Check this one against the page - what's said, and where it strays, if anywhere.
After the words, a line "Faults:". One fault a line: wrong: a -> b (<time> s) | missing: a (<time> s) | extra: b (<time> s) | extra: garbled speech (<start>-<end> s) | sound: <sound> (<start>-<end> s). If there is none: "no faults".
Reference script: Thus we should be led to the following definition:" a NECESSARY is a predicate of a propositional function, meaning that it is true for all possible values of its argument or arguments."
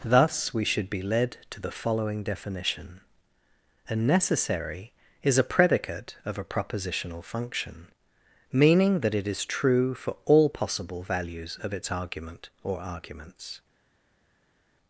Thus we should be led to the following definition:" a NECESSARY is a predicate of a propositional function, meaning that it is true for all possible values of its argument or arguments."
Faults:
no faults